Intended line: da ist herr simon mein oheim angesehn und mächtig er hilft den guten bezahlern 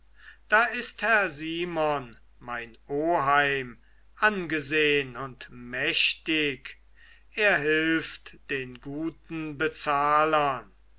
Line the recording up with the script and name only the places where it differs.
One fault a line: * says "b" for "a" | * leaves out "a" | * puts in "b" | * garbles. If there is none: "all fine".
all fine